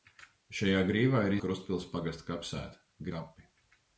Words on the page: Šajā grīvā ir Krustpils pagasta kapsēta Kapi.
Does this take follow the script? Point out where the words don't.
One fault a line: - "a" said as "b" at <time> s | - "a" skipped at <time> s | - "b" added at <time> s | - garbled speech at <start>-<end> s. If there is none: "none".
none